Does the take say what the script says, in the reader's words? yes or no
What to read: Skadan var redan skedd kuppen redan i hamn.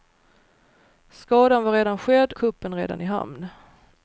yes